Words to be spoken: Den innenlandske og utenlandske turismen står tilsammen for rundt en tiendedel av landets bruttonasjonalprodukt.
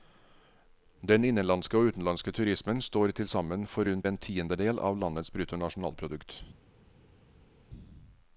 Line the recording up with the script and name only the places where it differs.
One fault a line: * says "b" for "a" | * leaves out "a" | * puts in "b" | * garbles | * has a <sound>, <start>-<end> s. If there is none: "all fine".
all fine